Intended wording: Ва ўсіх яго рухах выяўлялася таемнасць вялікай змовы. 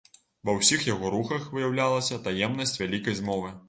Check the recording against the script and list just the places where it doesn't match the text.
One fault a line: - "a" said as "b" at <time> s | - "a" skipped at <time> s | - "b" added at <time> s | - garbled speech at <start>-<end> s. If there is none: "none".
none